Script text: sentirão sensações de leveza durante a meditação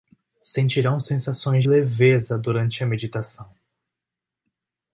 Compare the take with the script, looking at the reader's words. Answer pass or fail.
fail